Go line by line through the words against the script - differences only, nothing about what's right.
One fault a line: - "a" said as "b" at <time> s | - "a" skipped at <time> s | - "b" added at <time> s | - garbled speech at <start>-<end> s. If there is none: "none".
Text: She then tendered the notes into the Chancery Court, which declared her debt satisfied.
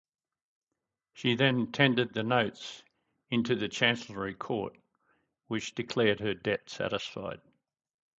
none